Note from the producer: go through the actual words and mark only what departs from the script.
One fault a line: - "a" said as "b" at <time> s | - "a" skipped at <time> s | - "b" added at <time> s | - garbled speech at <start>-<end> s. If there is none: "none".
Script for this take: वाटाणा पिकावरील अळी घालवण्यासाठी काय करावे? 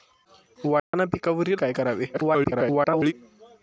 - "अळी घालवण्यासाठी" skipped at 1.6 s
- garbled speech at 2.1-3.1 s